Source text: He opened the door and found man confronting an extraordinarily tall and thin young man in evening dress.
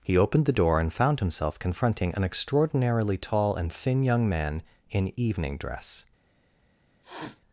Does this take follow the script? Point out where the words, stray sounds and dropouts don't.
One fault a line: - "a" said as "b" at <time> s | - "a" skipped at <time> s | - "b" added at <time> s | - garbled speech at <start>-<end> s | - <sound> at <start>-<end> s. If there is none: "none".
- "man" said as "himself" at 1.2 s
- sniff at 7.0-7.4 s